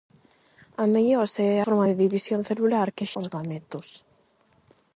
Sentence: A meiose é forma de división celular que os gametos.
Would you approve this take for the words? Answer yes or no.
yes